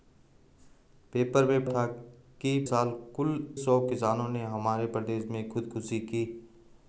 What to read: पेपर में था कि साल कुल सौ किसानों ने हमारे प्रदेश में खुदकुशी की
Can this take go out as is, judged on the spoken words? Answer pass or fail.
pass